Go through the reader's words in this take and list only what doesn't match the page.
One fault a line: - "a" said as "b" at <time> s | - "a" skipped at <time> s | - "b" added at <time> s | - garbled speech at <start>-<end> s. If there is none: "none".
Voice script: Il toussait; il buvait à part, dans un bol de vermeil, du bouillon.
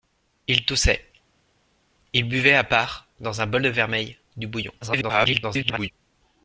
- garbled speech at 4.8-5.9 s